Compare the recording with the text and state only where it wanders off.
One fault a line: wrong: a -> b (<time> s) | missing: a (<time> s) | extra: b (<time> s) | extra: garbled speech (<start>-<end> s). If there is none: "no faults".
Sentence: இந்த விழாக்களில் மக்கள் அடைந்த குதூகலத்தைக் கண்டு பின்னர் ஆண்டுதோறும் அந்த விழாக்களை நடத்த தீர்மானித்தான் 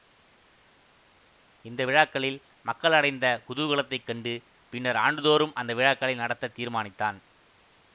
no faults